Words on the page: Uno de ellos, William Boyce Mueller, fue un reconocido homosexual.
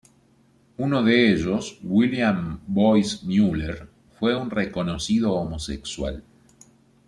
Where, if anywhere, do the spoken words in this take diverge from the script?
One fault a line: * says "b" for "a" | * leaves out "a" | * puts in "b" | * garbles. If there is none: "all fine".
all fine